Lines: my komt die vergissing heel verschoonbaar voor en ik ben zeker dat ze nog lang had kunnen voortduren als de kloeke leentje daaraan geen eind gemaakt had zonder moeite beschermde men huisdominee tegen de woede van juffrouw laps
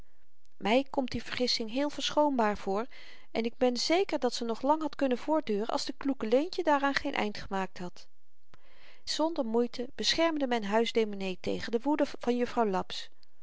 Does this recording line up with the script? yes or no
yes